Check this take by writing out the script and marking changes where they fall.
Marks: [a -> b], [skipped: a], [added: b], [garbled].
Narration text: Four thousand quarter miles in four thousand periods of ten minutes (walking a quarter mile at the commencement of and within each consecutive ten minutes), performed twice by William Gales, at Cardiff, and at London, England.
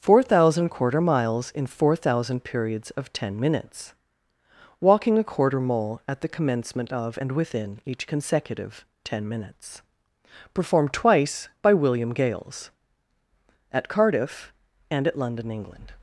Four thousand quarter miles in four thousand periods of ten minutes (walking a quarter [mile -> mole] at the commencement of and within each consecutive ten minutes), performed twice by William Gales, at Cardiff, and at London, England.